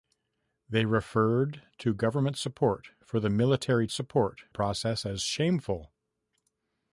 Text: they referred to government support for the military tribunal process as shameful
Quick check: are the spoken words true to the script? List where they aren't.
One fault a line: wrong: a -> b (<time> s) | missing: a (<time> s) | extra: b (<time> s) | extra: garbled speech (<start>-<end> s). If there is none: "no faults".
wrong: tribunal -> support (3.9 s)